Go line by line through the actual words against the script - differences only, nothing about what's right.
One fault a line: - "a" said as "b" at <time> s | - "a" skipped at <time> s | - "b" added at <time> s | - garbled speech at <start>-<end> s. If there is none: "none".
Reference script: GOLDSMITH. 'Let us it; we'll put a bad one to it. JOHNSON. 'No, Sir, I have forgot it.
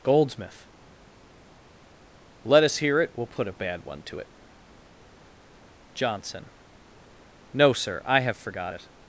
- "hear" added at 2.8 s